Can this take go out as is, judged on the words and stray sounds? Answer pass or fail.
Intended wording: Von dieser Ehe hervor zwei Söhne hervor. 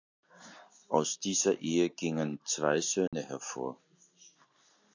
fail